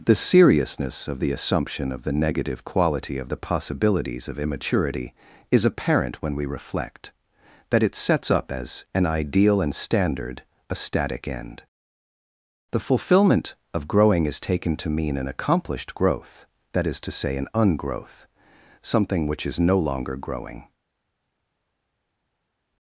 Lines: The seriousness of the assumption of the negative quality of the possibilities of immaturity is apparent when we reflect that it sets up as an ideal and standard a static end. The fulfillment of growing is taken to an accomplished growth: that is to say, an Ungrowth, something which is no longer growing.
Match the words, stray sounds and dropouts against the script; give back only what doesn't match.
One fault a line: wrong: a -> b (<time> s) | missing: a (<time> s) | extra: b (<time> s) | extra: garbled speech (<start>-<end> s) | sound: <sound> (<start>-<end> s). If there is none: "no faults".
extra: mean (14.9 s)